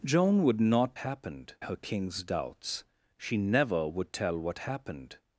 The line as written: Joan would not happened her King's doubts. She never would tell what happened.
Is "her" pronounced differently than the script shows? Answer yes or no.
no